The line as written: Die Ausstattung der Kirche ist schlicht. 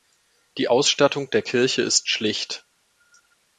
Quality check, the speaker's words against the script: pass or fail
pass